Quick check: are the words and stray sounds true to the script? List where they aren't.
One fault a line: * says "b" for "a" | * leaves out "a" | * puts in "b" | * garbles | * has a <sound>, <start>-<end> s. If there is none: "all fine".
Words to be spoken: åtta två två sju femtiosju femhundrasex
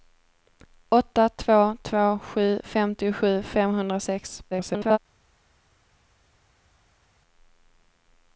* garbles